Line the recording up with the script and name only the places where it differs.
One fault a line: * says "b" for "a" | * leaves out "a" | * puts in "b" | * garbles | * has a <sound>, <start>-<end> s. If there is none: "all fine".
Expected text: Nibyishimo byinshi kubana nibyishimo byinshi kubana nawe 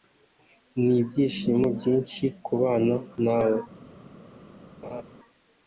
* leaves out "nibyishimo byinshi kubana"
* has a laugh, 4.8-5.0 s